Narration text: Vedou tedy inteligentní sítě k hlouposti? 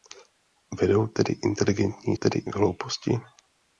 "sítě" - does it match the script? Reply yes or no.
no